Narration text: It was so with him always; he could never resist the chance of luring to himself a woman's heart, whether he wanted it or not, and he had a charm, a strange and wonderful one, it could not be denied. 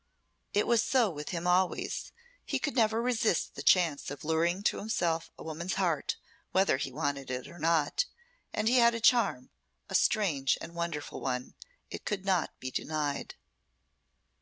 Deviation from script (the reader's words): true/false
false